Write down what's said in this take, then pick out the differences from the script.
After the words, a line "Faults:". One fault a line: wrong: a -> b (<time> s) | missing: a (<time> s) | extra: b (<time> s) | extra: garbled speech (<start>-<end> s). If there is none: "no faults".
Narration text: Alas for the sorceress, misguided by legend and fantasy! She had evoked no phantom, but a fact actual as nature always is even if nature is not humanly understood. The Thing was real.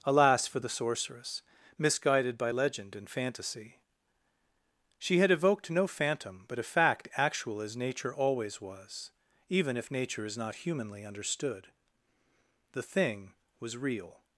Alas for the sorceress, misguided by legend and fantasy! She had evoked no phantom, but a fact actual as nature always was even if nature is not humanly understood. The Thing was real.
Faults:
wrong: is -> was (8.6 s)